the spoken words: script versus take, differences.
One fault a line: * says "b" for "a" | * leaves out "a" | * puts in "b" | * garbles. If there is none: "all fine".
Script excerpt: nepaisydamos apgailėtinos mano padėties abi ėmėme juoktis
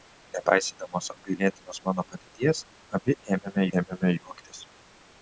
* puts in "ėmėme"